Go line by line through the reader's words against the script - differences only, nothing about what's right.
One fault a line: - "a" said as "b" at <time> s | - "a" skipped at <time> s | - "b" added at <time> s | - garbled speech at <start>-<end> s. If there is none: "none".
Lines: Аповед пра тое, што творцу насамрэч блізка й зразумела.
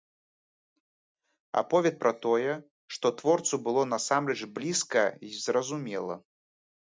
- "было" added at 3.7 s